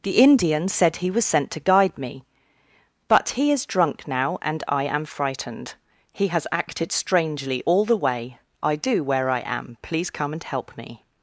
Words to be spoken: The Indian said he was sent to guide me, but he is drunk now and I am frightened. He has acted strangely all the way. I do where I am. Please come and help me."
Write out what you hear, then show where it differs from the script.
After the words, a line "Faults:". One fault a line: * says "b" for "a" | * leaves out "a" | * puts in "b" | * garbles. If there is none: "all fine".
The Indian said he was sent to guide me, but he is drunk now and I am frightened. He has acted strangely all the way. I do where I am. Please come and help me."
Faults:
all fine